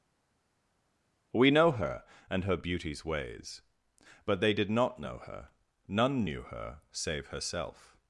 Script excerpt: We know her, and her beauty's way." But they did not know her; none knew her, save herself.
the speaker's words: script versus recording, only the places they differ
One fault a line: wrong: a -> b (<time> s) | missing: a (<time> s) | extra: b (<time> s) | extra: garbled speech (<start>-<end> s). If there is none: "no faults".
wrong: way -> ways (3.0 s)